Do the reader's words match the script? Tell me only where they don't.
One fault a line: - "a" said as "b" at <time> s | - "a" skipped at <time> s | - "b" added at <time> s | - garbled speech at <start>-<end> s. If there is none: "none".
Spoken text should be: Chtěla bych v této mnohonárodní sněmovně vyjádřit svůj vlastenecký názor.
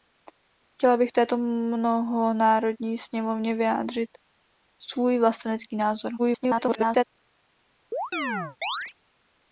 - garbled speech at 6.2-7.0 s